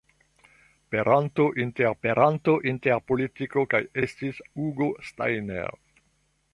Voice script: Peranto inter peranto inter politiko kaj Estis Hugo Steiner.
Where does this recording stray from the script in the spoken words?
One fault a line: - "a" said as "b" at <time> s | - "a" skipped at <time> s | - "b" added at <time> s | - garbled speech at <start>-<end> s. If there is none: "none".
none